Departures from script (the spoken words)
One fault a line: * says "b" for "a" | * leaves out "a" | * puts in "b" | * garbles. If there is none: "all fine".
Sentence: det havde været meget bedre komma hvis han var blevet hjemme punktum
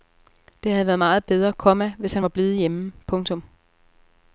all fine